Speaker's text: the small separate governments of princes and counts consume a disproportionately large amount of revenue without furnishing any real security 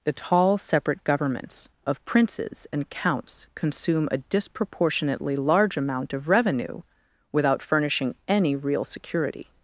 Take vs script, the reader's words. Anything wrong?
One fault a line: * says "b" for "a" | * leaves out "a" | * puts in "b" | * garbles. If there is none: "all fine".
* says "tall" for "small"